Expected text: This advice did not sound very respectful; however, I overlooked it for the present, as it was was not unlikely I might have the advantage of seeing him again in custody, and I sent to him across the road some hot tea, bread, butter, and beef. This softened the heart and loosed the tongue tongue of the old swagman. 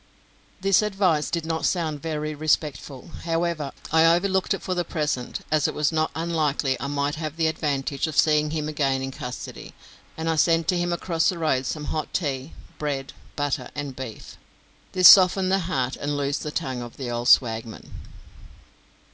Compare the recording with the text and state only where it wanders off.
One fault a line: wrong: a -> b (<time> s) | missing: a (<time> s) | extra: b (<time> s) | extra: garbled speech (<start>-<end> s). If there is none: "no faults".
missing: was (5.9 s)
missing: tongue (16.8 s)